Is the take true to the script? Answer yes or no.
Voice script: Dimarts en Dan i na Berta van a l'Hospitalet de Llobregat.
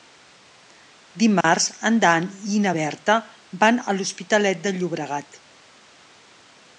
yes